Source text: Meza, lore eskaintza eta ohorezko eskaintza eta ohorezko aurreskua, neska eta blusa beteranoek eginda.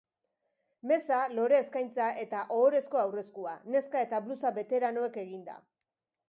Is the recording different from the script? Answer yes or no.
yes